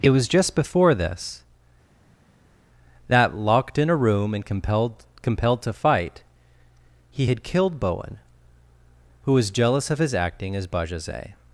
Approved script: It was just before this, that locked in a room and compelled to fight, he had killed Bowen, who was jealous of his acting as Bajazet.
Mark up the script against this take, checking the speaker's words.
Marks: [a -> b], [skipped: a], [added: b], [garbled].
It was just before this, that locked in a room and compelled [added: compelled] to fight, he had killed Bowen, who was jealous of his acting as Bajazet.